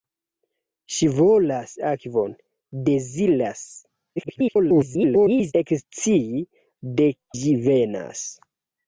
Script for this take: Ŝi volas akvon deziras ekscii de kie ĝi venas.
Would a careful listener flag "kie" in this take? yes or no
yes